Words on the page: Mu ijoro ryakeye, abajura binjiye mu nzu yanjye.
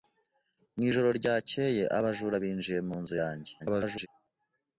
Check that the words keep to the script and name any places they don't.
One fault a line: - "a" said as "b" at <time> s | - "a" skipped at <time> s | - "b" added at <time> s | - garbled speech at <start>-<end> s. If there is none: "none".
- garbled speech at 3.6-4.1 s